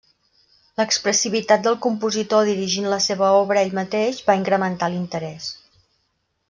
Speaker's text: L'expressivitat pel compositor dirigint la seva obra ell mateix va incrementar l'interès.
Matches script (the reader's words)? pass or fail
fail